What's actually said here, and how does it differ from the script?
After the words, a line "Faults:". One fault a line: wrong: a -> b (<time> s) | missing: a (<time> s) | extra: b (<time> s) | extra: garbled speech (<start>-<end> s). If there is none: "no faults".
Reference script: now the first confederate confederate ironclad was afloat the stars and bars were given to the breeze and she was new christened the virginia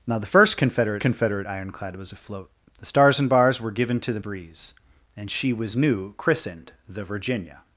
now the first confederate confederate ironclad was afloat the stars and bars were given to the breeze and she was new christened the virginia
Faults:
no faults